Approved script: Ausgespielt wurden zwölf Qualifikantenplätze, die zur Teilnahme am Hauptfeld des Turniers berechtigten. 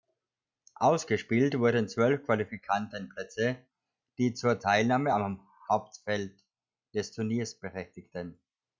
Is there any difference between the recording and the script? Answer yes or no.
no